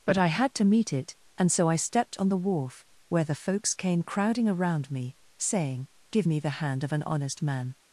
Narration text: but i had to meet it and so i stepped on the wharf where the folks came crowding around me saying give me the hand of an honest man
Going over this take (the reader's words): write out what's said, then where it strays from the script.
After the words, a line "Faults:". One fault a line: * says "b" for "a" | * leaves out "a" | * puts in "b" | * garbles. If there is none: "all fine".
but i had to meet it and so i stepped on the wharf where the folks came crowding around me saying give me the hand of an honest man
Faults:
all fine